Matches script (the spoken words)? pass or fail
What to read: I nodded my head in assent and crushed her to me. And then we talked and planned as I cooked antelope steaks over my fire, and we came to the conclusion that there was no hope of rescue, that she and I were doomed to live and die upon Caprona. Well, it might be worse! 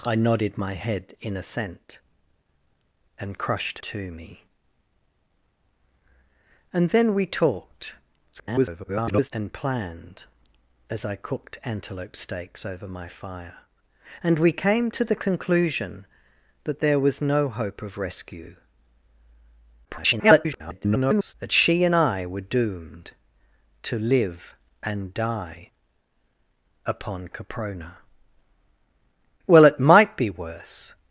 fail